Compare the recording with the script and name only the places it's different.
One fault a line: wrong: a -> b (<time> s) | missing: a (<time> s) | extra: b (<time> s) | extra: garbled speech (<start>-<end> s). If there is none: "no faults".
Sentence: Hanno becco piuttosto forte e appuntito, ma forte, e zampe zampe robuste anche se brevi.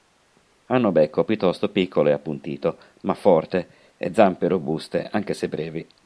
wrong: forte -> piccolo (1.7 s)
missing: zampe (4.5 s)